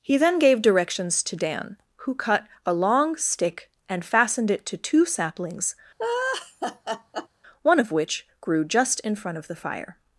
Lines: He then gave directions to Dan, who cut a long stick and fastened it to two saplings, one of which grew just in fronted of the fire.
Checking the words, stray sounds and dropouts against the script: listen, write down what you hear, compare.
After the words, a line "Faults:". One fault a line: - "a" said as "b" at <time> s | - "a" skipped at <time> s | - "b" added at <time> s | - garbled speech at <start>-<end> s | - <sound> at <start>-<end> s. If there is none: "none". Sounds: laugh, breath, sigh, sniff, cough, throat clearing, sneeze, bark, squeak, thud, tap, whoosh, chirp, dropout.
He then gave directions to Dan, who cut a long stick and fastened it to two saplings, one of which grew just in front of the fire.
Faults:
- laugh at 6.0-7.3 s
- "fronted" said as "front" at 9.2 s